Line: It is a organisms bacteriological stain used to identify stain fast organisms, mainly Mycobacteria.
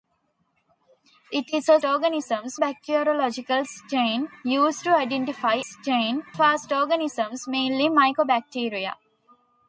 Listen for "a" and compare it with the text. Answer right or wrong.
right